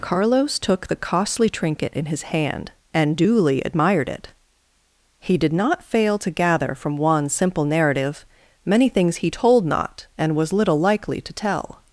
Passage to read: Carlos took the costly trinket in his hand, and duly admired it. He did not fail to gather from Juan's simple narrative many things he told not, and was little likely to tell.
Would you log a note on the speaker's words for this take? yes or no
no